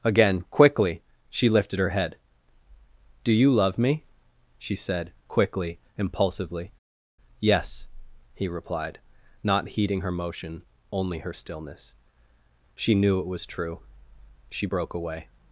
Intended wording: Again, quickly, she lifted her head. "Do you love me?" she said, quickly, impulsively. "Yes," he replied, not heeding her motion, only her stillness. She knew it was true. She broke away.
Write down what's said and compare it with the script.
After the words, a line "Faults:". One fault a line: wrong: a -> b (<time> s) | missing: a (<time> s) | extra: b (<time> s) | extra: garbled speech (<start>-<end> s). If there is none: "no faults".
Again, quickly, she lifted her head. "Do you love me?" she said, quickly, impulsively. "Yes," he replied, not heeding her motion, only her stillness. She knew it was true. She broke away.
Faults:
no faults